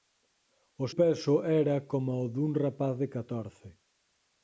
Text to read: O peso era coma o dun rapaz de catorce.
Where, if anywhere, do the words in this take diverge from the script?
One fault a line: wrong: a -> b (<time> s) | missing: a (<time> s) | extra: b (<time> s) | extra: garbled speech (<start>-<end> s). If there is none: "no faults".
no faults